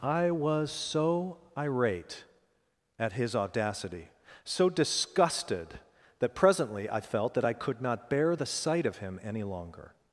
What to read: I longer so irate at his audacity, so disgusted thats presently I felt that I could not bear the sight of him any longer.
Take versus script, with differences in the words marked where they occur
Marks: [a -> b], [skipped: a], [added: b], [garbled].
I [longer -> was] so irate at his audacity, so disgusted [thats -> that] presently I felt that I could not bear the sight of him any longer.